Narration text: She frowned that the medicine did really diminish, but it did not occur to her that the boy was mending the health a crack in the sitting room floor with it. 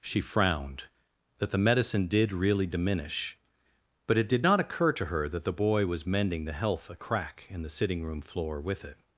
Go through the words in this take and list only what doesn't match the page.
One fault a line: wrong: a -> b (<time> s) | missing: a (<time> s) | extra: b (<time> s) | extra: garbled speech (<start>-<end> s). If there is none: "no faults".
no faults